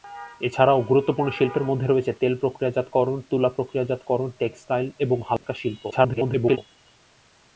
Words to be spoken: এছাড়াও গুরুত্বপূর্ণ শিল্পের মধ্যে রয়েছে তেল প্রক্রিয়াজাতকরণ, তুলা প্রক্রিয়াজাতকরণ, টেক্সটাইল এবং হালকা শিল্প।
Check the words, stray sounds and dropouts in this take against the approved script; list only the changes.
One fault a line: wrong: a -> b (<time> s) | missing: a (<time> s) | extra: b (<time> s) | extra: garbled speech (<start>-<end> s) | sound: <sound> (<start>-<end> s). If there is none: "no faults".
sound: dropout (5.4-5.4 s)
extra: garbled speech (5.9-6.6 s)